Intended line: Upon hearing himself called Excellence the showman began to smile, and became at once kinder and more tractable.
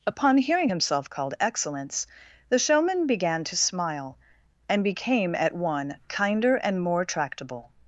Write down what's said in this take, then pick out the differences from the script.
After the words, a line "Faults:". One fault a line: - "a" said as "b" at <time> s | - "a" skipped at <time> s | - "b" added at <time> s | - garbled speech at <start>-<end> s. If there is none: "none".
Upon hearing himself called Excellence the showman began to smile, and became at one kinder and more tractable.
Faults:
- "once" said as "one" at 5.5 s